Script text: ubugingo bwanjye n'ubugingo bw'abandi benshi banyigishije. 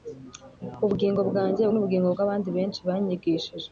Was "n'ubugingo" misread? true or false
false